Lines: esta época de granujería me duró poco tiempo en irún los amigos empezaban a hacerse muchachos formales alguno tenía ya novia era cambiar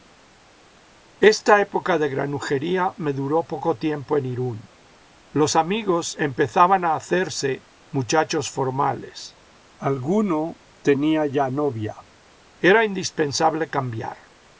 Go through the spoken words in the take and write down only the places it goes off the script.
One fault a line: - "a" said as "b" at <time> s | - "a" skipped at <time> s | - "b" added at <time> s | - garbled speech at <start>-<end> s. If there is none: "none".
- "indispensable" added at 12.8 s